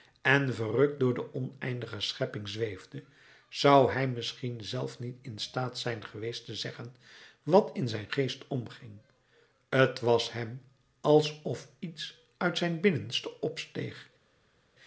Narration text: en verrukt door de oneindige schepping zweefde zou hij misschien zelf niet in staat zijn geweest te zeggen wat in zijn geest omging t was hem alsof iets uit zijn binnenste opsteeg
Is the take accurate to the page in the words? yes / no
yes